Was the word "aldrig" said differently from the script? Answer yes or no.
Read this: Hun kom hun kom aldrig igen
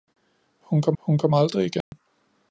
no